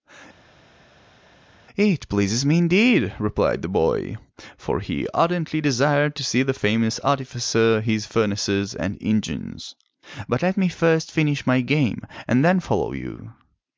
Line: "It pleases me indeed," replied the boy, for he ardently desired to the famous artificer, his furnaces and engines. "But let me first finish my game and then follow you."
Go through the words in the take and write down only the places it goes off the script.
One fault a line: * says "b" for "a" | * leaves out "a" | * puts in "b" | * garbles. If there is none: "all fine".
* puts in "see"